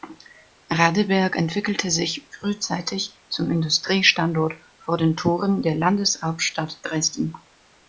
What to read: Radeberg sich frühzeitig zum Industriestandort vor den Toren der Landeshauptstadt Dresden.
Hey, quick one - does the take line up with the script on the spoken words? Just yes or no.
no